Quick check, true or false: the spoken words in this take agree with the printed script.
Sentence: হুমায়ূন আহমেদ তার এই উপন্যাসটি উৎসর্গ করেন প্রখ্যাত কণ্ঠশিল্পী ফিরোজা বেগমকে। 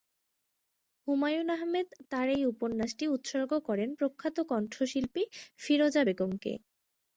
true